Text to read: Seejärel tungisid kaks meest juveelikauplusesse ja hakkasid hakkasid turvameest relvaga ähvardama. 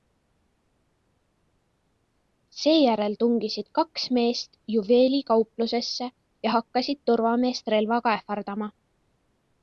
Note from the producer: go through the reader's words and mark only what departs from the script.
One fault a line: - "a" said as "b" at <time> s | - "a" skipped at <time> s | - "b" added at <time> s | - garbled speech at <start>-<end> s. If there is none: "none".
- "hakkasid" skipped at 7.0 s